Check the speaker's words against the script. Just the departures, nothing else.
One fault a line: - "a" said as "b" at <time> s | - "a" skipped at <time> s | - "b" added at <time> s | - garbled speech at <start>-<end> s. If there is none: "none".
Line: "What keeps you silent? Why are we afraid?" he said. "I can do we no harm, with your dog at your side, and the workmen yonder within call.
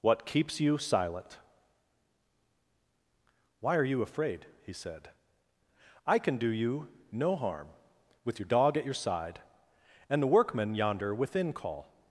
- "we" said as "you" at 3.8 s
- "we" said as "you" at 6.5 s